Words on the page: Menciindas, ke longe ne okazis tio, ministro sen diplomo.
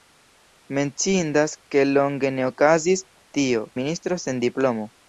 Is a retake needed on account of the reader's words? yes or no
no